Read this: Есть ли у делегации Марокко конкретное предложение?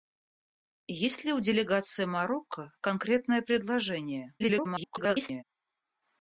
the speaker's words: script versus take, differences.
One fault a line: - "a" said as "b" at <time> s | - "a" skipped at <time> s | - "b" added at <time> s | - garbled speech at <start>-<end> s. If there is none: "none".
- garbled speech at 4.4-5.4 s